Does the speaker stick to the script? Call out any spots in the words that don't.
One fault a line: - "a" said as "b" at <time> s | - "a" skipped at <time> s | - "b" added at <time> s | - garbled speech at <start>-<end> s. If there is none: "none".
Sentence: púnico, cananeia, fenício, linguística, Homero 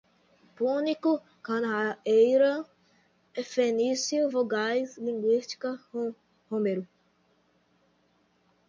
- "vogais" added at 4.3 s